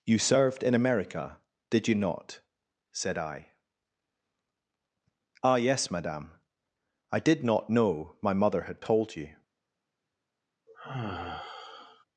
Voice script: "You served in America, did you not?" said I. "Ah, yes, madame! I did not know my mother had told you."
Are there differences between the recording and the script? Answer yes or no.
no